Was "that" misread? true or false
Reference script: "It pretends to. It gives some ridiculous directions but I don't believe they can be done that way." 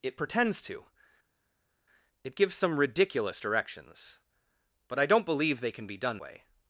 true